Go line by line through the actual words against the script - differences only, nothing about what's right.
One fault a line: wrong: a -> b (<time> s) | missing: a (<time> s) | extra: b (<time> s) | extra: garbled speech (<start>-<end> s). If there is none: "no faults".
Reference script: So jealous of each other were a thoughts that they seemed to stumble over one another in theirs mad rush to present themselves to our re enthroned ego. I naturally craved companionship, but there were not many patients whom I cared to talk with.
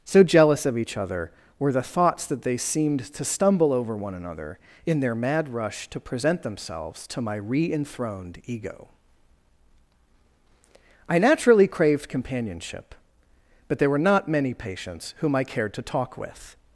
wrong: a -> the (1.7 s)
wrong: theirs -> their (5.0 s)
wrong: our -> my (7.2 s)